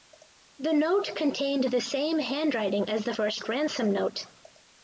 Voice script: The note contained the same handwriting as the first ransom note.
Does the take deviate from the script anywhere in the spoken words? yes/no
no